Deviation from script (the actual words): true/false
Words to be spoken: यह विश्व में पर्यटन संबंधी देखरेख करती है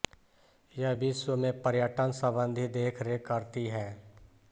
false